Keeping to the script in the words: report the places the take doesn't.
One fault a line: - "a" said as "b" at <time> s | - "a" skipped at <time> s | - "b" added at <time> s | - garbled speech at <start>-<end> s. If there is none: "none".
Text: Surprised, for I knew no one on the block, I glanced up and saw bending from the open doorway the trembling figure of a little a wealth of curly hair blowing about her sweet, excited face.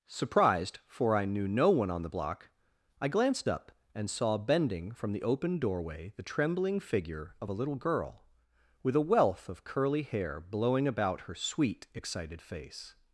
- "girl with" added at 7.7 s